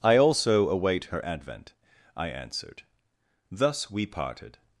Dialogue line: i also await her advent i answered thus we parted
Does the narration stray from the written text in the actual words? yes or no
no